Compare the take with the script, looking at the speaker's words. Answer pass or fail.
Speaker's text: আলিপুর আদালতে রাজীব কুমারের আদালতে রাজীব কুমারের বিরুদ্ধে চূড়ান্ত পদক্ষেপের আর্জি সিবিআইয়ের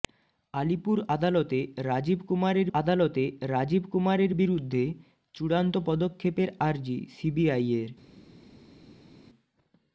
pass